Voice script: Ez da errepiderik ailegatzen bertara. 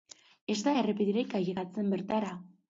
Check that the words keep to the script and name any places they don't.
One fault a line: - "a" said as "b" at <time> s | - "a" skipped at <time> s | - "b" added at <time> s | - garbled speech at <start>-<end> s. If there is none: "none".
none